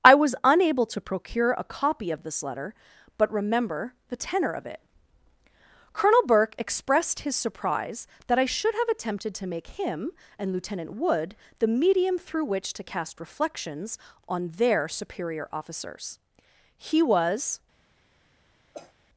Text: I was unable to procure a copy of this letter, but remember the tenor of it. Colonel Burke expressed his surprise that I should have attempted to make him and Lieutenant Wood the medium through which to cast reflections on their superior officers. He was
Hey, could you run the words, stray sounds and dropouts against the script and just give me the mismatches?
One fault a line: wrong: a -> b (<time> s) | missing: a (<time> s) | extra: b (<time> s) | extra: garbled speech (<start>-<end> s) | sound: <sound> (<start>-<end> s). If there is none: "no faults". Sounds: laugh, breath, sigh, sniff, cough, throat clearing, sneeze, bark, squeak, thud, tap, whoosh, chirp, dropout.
sound: cough (18.7-18.9 s)